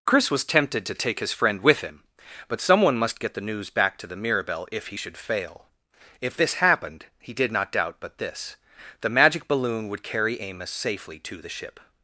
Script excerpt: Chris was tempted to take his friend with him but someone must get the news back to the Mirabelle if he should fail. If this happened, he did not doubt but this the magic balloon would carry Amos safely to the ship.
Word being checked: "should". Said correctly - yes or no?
yes